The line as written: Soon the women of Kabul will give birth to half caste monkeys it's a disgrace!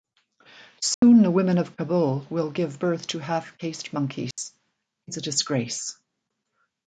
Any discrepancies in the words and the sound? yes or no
yes